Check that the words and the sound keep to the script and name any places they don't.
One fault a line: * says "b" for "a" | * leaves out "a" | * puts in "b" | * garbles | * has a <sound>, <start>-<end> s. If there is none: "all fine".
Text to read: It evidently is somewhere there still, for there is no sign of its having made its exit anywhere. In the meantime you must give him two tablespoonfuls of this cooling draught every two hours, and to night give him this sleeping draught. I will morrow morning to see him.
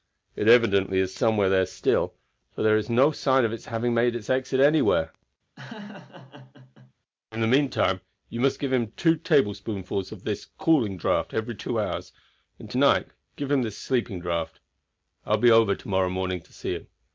* has a laugh, 5.6-6.9 s
* puts in "be over to"